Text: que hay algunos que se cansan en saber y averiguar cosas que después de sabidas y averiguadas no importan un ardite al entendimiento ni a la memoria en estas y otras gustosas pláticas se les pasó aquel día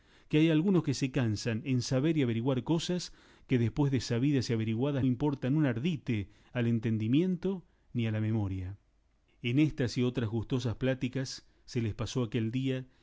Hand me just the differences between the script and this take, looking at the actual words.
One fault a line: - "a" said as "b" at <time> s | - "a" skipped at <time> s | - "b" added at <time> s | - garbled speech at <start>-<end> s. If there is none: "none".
- "no" skipped at 5.0 s